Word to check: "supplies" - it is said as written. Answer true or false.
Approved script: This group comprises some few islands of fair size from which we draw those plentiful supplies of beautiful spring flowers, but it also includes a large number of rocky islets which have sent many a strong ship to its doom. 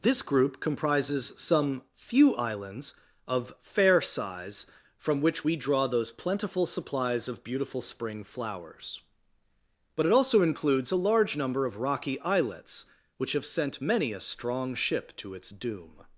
true